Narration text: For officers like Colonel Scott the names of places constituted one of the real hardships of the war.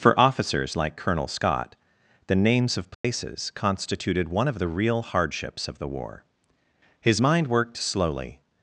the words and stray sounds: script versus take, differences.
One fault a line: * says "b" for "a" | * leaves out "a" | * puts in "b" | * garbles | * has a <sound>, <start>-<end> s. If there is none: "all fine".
* has a dropout, 2.9-3.0 s
* puts in "His mind worked slowly"